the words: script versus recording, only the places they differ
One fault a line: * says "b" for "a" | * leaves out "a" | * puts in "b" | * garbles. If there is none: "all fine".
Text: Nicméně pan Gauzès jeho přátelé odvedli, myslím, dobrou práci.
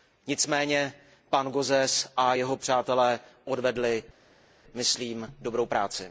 * puts in "a"